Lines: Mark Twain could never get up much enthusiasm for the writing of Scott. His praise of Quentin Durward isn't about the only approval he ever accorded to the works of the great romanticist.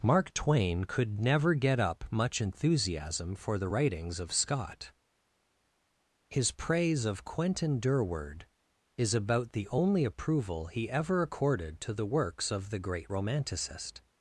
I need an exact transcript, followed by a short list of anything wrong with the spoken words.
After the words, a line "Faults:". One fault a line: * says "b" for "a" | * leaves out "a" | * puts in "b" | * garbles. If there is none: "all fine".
Mark Twain could never get up much enthusiasm for the writings of Scott. His praise of Quentin Durward is about the only approval he ever accorded to the works of the great romanticist.
Faults:
* says "writings" for "writing"
* says "is" for "isn't"